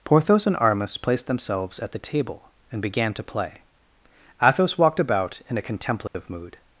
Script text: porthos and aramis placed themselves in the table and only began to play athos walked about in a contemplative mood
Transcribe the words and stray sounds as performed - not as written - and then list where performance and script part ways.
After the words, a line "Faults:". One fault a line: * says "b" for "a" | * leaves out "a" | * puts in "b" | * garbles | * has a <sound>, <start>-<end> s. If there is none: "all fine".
porthos and aramis placed themselves at the table and began to play athos walked about in a contemplative mood
Faults:
* says "at" for "in"
* leaves out "only"
* has a dropout, 6.1-6.1 s